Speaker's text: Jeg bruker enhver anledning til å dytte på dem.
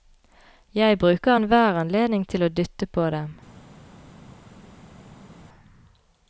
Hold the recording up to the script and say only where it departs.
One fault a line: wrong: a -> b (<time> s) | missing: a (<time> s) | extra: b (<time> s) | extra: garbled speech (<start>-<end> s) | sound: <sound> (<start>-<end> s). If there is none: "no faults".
no faults